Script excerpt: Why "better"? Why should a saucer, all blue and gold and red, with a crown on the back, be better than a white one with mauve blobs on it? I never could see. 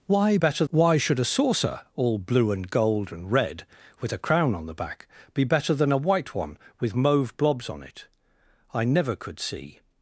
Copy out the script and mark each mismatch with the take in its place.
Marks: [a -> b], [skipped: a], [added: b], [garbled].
Why "better"? Why should a saucer, all blue and gold and red, with a crown on the back, be better than a white one with mauve blobs on it? I never could see.